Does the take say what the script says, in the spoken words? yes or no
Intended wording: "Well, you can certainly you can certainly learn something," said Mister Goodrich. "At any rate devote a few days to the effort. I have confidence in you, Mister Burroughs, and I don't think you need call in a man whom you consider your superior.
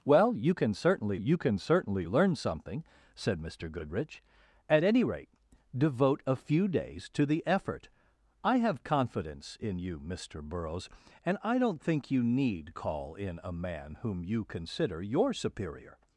yes